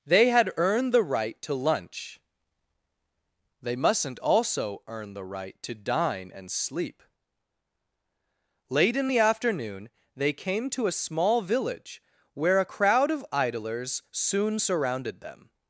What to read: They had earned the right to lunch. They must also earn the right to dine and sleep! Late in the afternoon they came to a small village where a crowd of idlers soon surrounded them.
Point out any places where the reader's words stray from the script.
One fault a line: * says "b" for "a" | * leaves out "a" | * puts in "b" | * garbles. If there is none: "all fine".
* says "mustn't" for "must"